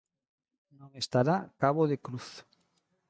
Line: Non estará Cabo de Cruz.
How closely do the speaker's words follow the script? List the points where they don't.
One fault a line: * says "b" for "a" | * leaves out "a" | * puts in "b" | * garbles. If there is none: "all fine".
all fine